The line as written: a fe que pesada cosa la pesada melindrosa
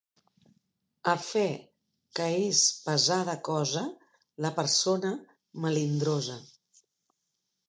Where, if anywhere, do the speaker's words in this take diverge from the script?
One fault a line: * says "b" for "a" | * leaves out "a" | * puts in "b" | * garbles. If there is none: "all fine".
* puts in "és"
* says "persona" for "pesada"